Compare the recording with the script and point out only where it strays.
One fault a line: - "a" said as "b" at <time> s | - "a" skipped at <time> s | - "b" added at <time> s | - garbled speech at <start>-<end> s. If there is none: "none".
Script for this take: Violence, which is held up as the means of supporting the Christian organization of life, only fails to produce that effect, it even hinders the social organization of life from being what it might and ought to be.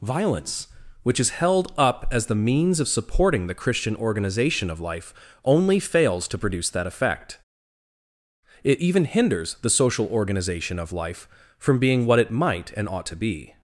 none